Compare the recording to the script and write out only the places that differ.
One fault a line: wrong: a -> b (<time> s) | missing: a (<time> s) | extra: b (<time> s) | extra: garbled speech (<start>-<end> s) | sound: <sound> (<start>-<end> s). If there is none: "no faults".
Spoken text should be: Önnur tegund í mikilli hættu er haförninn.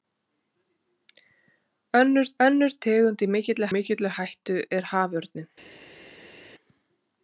extra: önnur (2.4 s)
extra: mikilli (3.8 s)